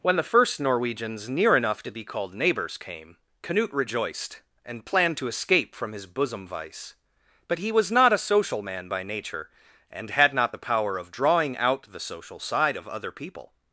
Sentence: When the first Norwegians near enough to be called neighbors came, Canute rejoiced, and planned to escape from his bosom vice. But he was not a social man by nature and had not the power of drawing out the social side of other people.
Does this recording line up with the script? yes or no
yes